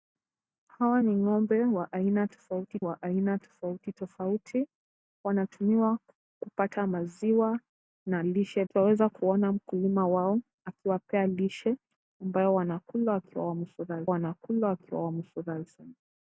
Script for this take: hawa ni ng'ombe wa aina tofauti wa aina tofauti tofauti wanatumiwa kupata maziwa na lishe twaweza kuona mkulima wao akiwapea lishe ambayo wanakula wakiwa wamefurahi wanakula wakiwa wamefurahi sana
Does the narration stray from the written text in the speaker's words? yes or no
no